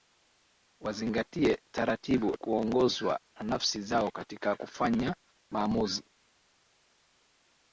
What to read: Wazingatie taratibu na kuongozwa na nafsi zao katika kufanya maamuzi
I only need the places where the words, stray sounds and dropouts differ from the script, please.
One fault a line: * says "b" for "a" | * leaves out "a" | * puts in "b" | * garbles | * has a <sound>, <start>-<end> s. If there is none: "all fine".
* leaves out "na"